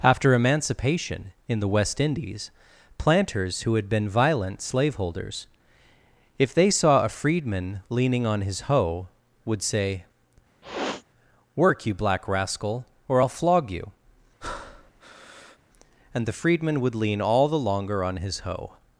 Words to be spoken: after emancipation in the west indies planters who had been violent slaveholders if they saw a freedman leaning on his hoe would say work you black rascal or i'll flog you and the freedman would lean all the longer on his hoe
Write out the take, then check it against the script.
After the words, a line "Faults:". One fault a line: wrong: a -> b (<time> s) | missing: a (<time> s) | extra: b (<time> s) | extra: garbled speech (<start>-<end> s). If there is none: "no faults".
after emancipation in the west indies planters who had been violent slaveholders if they saw a freedman leaning on his hoe would say work you black rascal or i'll flog you and the freedman would lean all the longer on his hoe
Faults:
no faults